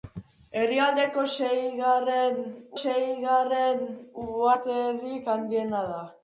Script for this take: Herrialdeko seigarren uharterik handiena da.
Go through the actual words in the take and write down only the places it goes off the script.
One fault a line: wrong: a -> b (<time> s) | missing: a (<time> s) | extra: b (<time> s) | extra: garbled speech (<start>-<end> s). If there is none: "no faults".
extra: seigarren (2.8 s)